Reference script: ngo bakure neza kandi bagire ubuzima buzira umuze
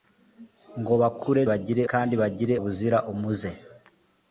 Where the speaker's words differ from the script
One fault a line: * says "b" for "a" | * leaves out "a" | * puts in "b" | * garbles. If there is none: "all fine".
* says "bagire" for "neza"
* leaves out "ubuzima"